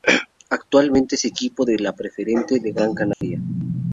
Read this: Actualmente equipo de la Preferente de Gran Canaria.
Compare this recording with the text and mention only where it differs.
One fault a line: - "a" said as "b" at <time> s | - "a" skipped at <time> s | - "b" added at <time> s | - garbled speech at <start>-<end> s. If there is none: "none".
- "es" added at 1.1 s